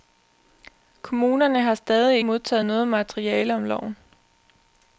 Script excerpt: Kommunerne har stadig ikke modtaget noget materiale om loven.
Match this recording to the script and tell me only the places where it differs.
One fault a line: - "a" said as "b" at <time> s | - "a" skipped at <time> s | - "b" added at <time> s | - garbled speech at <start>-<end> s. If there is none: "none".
- "ikke" skipped at 2.2 s